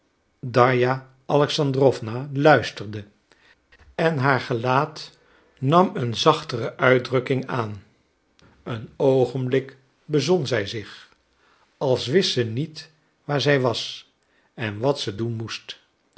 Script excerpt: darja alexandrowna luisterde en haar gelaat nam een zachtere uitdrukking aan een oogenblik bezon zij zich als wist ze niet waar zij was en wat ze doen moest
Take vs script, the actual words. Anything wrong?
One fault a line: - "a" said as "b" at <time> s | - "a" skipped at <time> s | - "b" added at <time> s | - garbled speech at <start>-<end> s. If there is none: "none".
none